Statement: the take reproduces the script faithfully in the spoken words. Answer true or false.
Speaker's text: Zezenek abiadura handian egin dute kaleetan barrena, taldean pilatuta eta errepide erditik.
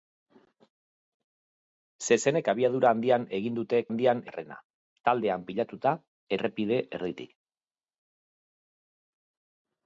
false